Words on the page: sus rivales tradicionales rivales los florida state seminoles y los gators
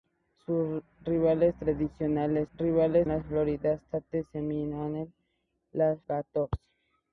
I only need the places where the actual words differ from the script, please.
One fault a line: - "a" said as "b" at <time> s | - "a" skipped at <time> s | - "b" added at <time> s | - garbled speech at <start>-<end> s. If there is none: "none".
none